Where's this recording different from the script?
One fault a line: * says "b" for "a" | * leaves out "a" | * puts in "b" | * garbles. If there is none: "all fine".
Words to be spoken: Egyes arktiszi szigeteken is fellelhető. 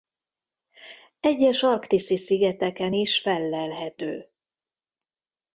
all fine